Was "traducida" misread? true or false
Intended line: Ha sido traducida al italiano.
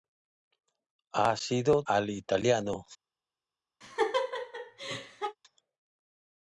true